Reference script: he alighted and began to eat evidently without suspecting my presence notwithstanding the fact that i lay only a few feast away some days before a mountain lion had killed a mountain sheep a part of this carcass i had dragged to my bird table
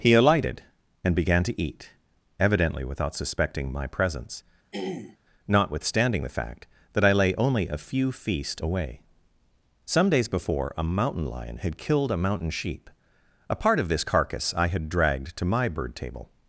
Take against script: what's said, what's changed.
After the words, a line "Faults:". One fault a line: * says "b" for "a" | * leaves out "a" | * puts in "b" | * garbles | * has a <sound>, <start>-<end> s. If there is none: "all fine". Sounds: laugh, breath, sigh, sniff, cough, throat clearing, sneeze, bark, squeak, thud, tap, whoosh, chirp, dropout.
he alighted and began to eat evidently without suspecting my presence notwithstanding the fact that i lay only a few feast away some days before a mountain lion had killed a mountain sheep a part of this carcass i had dragged to my bird table
Faults:
* has a throat clearing, 4.7-5.2 s